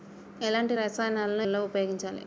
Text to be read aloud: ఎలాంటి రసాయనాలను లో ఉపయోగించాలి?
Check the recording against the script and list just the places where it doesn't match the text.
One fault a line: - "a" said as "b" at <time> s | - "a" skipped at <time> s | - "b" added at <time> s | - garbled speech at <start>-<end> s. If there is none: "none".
none